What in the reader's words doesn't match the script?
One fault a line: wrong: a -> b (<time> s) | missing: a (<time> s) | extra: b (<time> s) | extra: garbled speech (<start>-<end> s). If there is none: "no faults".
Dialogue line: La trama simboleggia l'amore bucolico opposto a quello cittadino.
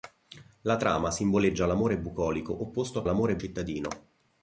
wrong: quello -> l'amore (3.1 s)